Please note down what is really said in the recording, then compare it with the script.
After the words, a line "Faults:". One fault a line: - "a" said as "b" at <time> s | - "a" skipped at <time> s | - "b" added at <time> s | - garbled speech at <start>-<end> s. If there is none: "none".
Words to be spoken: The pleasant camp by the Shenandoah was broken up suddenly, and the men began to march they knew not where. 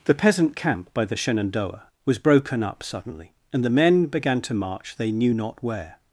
The peasant camp by the Shenandoah was broken up suddenly, and the men began to march they knew not where.
Faults:
- "pleasant" said as "peasant" at 0.1 s